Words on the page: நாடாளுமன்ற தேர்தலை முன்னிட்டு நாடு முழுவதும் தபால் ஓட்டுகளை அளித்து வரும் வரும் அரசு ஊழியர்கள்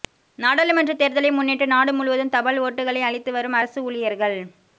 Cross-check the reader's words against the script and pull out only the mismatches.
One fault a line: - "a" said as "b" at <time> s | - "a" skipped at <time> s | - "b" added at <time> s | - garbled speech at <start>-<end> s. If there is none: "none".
- "வரும்" skipped at 3.6 s